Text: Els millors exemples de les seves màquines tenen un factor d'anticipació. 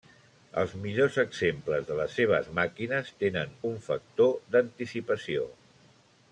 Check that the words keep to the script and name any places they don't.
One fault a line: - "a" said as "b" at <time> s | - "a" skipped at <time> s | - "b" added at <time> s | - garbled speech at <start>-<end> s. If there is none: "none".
none